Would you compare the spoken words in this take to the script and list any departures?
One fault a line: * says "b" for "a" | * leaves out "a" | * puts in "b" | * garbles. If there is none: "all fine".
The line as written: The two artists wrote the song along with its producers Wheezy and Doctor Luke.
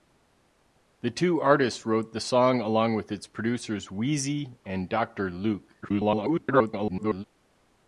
* garbles